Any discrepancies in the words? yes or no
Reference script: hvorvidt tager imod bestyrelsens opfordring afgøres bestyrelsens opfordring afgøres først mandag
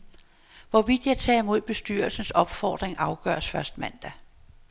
yes